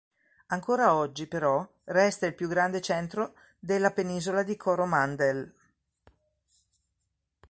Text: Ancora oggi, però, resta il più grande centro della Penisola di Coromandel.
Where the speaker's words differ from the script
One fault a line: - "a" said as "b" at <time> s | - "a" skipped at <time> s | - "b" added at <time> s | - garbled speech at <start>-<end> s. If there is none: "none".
none